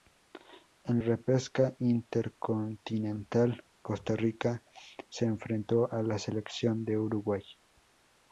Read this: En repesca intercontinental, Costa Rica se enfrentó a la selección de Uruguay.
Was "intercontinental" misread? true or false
false